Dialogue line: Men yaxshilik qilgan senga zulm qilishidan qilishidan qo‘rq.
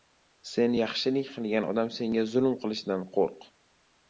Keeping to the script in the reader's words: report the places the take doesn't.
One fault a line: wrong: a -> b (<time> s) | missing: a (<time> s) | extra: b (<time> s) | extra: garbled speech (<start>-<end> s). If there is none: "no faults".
wrong: Men -> Sen (0.5 s)
extra: odam (1.7 s)
missing: qilishidan (3.1 s)